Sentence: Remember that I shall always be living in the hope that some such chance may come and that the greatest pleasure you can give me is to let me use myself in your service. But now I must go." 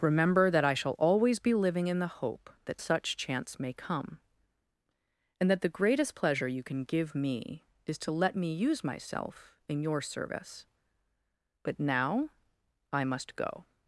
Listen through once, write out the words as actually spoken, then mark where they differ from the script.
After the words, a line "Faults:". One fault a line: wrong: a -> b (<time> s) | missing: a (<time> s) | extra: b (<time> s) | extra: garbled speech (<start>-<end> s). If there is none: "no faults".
Remember that I shall always be living in the hope that such chance may come and that the greatest pleasure you can give me is to let me use myself in your service. But now I must go."
Faults:
missing: some (2.8 s)